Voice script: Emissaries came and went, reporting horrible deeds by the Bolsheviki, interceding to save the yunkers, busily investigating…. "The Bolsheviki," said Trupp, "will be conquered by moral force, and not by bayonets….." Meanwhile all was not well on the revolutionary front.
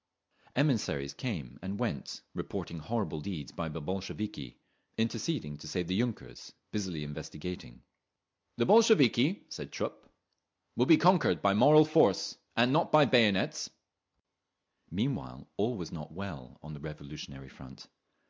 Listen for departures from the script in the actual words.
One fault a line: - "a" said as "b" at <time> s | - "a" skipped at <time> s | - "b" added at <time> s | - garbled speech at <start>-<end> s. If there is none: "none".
none